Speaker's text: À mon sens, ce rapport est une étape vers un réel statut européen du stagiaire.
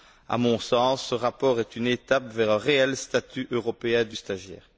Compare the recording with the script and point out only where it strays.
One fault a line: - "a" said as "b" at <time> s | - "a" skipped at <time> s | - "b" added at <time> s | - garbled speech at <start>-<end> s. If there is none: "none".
none